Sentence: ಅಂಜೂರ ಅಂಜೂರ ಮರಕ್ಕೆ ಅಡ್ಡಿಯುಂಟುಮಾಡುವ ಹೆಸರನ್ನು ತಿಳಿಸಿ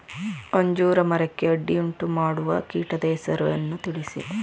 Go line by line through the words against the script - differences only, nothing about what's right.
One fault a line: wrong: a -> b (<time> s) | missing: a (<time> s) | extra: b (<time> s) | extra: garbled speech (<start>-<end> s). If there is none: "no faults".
missing: ಅಂಜೂರ (1.0 s)
extra: ಕೀಟದ (2.7 s)